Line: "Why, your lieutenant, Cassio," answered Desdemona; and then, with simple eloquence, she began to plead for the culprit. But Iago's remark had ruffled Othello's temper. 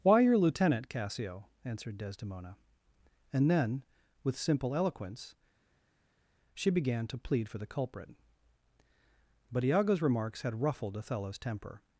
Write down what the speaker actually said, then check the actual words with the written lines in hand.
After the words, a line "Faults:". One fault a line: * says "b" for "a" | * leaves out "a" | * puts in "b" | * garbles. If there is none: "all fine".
"Why, your lieutenant, Cassio," answered Desdemona; and then, with simple eloquence, she began to plead for the culprit. But Iago's remarks had ruffled Othello's temper.
Faults:
* says "remarks" for "remark"